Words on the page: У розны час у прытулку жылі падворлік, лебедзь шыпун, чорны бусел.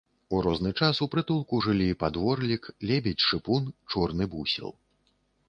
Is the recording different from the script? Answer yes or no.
no